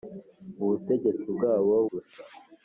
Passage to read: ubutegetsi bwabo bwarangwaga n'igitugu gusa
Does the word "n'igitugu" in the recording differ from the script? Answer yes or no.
yes